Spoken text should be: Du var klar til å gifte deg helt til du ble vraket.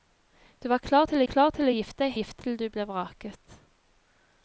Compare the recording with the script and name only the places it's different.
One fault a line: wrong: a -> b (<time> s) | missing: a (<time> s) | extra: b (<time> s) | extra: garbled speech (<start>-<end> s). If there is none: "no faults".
extra: klar til (1.3 s)
wrong: helt -> gifte (2.1 s)